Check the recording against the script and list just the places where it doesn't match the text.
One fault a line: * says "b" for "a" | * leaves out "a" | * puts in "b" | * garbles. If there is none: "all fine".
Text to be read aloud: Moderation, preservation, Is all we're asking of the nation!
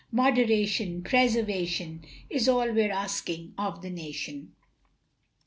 all fine